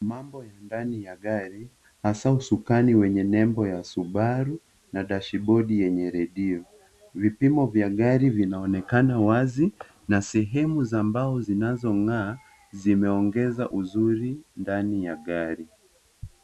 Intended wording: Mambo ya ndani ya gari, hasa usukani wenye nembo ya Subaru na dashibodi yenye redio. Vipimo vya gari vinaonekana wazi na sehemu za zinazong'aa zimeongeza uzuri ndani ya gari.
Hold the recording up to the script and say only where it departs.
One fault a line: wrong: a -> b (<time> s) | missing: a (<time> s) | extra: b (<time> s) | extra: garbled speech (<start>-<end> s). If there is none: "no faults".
extra: mbao (11.0 s)